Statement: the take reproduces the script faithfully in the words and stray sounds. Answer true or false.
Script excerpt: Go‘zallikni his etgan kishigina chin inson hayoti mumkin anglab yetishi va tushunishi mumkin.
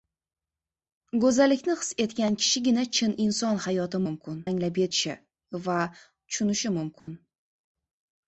false